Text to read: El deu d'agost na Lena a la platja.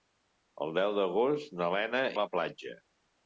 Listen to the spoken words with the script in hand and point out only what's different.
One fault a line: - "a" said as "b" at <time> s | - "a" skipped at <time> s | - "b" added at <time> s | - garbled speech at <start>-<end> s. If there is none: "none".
none